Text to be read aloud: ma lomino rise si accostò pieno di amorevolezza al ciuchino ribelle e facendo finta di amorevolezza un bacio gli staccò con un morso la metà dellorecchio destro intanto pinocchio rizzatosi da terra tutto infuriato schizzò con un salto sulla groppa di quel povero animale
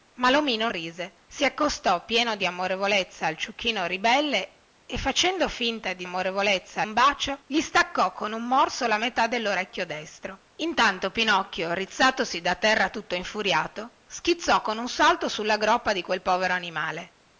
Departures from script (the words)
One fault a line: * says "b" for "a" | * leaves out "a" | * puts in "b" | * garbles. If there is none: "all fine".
all fine